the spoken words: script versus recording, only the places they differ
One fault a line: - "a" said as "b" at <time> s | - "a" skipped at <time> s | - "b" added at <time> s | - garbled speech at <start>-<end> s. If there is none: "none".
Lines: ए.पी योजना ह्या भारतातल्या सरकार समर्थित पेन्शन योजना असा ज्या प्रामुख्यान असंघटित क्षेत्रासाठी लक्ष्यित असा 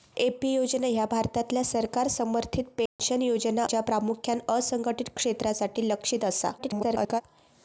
- "असा" skipped at 3.6 s
- garbled speech at 6.6-7.2 s